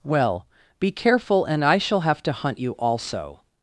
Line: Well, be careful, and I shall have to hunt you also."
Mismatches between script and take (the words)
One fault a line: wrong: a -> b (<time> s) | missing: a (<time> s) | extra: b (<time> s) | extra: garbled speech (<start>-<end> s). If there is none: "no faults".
no faults